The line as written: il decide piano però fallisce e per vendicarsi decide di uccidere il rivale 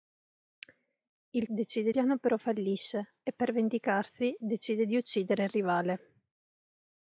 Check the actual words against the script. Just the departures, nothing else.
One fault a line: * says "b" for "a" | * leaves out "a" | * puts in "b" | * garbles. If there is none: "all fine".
all fine